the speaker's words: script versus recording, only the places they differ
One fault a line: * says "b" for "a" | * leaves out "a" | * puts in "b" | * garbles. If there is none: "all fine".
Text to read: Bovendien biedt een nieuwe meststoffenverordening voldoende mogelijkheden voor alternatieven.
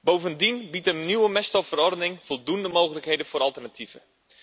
all fine